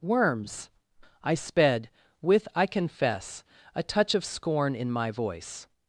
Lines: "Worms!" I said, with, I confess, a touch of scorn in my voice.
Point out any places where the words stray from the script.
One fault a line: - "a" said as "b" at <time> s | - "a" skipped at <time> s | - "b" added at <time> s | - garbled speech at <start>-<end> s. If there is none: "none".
- "said" said as "sped" at 1.4 s